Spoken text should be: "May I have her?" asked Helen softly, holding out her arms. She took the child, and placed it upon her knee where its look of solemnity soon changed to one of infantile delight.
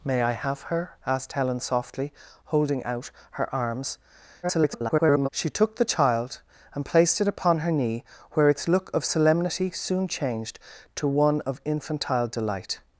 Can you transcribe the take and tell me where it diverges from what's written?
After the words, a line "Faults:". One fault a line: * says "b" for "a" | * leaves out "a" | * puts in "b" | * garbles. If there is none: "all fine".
"May I have her?" asked Helen softly, holding out her arms. [garbled] She took the child, and placed it upon her knee where its look of solemnity soon changed to one of infantile delight.
Faults:
* garbles